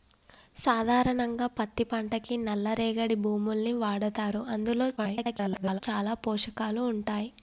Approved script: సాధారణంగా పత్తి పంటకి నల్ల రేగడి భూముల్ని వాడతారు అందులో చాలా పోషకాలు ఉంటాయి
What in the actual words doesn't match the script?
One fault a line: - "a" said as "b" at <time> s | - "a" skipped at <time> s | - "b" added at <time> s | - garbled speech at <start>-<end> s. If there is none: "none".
- garbled speech at 5.0-5.8 s